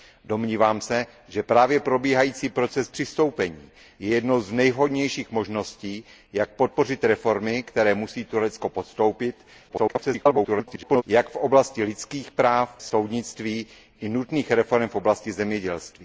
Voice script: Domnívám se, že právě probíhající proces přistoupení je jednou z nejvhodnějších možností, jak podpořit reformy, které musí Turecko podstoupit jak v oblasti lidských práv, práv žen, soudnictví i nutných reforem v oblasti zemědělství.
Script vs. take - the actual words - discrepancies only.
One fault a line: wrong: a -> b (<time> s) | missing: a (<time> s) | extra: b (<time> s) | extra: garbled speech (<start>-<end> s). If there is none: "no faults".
extra: garbled speech (9.7-11.0 s)
missing: práv žen (12.7 s)